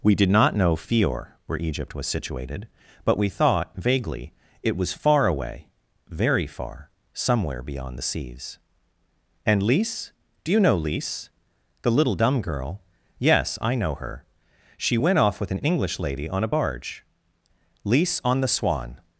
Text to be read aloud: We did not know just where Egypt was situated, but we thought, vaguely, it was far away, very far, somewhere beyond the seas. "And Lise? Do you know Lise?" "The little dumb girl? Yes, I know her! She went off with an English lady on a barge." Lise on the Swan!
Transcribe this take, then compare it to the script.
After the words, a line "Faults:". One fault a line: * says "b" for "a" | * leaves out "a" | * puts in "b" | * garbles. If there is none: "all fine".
We did not know fior where Egypt was situated, but we thought, vaguely, it was far away, very far, somewhere beyond the seas. "And Lise? Do you know Lise?" "The little dumb girl? Yes, I know her! She went off with an English lady on a barge." Lise on the Swan!
Faults:
* says "fior" for "just"